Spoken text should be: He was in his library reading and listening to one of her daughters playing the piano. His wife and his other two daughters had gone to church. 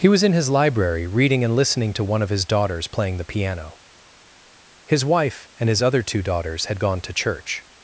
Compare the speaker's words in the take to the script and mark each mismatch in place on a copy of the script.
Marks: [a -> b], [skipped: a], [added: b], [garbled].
He was in his library reading and listening to one of [her -> his] daughters playing the piano. His wife and his other two daughters had gone to church.